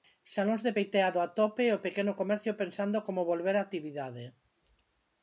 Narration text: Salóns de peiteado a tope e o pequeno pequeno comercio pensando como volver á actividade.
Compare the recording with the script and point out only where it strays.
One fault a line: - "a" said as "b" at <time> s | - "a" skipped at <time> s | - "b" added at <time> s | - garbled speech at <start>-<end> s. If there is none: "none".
- "pequeno" skipped at 2.1 s